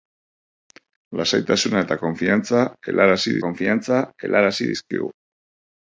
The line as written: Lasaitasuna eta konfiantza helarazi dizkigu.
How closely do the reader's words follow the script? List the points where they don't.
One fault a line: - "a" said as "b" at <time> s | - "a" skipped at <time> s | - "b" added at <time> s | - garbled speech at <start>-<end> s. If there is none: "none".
- "konfiantza helarazi" added at 3.5 s